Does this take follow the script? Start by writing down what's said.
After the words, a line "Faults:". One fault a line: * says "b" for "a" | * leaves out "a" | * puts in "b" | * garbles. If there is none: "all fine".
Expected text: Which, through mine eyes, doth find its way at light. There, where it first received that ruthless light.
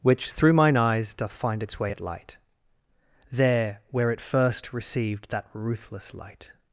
Which, through mine eyes, doth find its way at light. There, where it first received that ruthless light.
Faults:
all fine